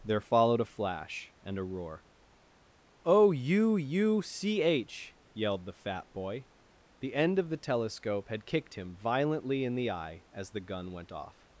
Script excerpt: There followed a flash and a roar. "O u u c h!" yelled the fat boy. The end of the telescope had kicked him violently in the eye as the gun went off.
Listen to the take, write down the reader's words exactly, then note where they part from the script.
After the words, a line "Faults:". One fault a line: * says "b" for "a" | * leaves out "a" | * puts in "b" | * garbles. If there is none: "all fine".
There followed a flash and a roar. "O u u c h!" yelled the fat boy. The end of the telescope had kicked him violently in the eye as the gun went off.
Faults:
all fine